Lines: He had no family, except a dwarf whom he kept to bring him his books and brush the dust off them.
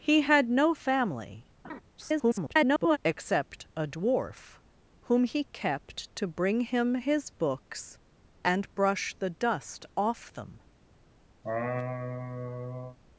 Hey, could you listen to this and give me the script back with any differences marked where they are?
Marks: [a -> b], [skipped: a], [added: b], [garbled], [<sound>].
He had no family, [laugh] [garbled] except a dwarf whom he kept to bring him his books and brush the dust off them. [laugh]